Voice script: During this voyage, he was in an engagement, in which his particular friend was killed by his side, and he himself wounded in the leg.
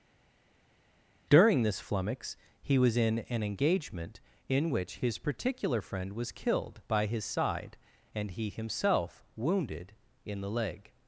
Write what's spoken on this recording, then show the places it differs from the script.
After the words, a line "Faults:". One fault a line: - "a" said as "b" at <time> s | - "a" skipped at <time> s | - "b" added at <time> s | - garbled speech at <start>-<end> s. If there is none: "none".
During this flummox, he was in an engagement, in which his particular friend was killed by his side, and he himself wounded in the leg.
Faults:
- "voyage" said as "flummox" at 1.8 s